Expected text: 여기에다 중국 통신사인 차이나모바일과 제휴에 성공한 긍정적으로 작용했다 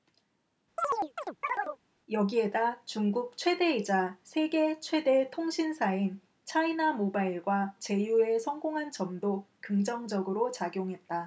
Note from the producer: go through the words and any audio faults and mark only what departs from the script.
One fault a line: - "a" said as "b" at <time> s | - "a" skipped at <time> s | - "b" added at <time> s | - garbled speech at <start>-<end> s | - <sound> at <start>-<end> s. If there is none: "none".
- chirp at 0.8-1.8 s
- "최대이자 세계 최대" added at 3.4 s
- "점도" added at 8.9 s